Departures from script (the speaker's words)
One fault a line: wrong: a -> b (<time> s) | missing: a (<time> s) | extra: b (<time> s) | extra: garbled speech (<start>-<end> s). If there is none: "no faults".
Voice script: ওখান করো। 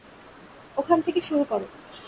extra: থেকে শুরু (1.0 s)